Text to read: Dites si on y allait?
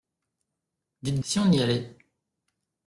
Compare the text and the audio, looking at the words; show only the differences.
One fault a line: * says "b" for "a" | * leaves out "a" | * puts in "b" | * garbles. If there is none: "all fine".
all fine